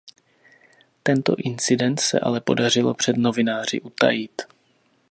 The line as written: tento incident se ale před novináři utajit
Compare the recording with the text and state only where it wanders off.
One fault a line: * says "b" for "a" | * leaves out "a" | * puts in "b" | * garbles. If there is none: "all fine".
* puts in "podařilo"